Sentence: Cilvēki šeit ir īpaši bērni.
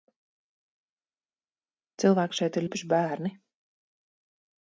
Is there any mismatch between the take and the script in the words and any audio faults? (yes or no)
no